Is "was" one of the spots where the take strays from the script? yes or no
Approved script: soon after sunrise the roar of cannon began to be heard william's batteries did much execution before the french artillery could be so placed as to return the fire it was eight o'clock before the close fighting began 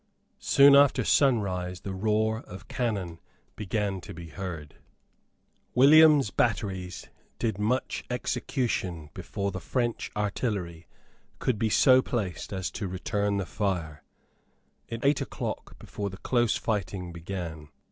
yes